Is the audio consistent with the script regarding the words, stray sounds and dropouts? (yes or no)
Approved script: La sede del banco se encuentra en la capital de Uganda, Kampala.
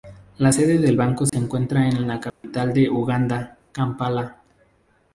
no